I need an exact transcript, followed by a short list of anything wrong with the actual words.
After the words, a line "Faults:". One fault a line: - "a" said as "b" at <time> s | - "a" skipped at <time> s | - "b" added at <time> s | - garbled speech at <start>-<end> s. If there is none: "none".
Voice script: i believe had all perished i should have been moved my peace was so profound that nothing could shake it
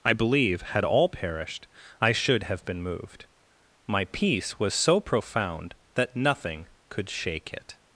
i believe had all perished i should have been moved my peace was so profound that nothing could shake it
Faults:
none